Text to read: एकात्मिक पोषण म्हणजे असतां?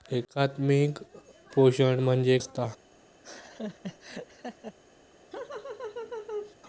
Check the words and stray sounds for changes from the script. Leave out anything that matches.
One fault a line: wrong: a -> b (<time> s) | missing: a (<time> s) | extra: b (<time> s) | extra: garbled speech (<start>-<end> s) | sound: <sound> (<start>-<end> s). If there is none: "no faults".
sound: laugh (3.2-4.8 s)
sound: laugh (5.3-6.5 s)